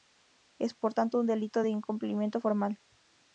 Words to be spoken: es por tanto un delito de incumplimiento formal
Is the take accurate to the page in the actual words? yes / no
yes